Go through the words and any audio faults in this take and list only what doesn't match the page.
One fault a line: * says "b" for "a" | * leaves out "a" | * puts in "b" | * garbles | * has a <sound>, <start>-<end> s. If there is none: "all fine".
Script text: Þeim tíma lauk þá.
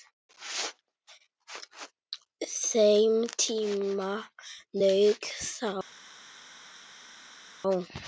all fine